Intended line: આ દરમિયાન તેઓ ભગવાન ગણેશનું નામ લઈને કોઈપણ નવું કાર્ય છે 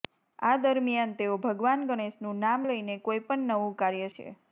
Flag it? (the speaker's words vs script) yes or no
no